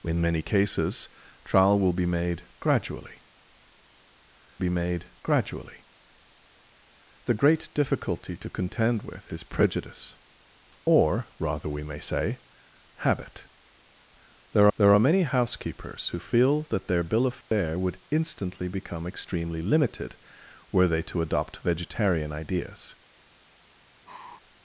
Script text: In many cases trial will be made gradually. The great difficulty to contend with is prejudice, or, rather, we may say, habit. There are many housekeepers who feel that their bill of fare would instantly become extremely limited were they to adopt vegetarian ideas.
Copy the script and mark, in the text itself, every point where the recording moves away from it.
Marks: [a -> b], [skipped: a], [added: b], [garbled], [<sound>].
In many cases trial will be made gradually. [added: be made gradually] The great difficulty to contend with is prejudice, or, rather, we may say, habit. There [added: there] are many housekeepers who feel that their bill of fare [dropout] would instantly become extremely limited were they to adopt vegetarian ideas. [sigh]